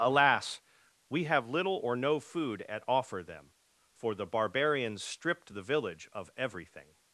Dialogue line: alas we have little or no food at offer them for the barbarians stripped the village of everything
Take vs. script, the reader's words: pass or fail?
pass